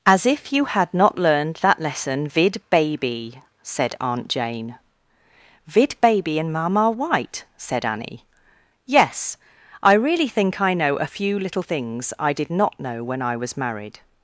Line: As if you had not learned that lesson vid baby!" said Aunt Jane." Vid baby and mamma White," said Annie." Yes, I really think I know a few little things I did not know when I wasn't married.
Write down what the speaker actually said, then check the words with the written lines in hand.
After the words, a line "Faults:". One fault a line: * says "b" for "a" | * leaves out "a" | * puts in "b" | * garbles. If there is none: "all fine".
As if you had not learned that lesson vid baby!" said Aunt Jane." Vid baby and mamma White," said Annie." Yes, I really think I know a few little things I did not know when I was married.
Faults:
* says "was" for "wasn't"